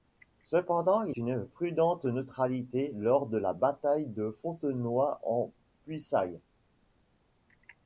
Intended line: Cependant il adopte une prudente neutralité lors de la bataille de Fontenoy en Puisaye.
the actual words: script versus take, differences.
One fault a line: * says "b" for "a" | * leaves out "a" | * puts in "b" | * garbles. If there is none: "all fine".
* leaves out "adopte"